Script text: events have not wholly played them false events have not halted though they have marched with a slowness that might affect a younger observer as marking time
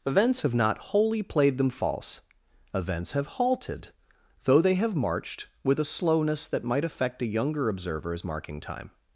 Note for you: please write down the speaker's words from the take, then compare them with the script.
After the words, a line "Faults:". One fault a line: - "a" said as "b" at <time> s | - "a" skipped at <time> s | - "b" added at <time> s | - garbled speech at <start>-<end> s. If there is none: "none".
events have not wholly played them false events have halted though they have marched with a slowness that might affect a younger observer as marking time
Faults:
- "not" skipped at 3.3 s